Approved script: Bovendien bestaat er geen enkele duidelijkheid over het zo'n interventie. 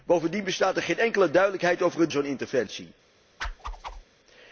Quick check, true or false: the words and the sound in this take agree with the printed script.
false